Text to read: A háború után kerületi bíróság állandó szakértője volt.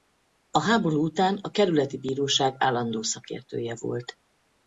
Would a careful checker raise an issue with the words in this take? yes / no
yes